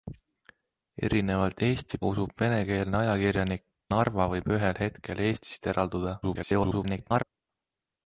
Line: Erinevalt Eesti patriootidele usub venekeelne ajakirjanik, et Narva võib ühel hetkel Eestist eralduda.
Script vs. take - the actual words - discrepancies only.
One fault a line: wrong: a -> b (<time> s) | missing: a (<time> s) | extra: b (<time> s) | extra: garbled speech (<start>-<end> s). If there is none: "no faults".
missing: patriootidele (2.0 s)
missing: et (3.6 s)
extra: garbled speech (6.2-7.2 s)